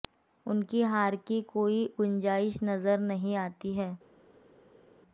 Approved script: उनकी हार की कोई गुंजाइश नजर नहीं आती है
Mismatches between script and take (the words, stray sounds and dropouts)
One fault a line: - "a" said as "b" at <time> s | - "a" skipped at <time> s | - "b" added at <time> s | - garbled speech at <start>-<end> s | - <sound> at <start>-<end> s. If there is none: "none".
none